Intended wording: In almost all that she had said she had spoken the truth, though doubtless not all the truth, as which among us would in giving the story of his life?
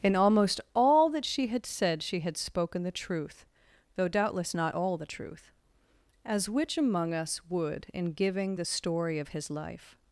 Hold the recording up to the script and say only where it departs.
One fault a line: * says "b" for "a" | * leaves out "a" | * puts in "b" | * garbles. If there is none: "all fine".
all fine